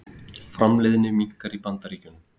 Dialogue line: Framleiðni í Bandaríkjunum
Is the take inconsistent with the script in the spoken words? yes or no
yes